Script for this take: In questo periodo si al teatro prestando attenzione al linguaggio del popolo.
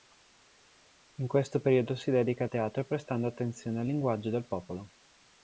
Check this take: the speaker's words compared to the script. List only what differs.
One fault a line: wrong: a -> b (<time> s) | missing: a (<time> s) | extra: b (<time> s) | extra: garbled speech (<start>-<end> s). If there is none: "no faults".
extra: dedica (2.1 s)